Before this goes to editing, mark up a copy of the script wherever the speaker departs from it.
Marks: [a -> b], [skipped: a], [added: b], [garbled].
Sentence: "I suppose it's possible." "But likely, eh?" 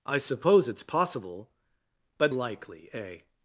"I suppose it's possible." "But likely, eh?"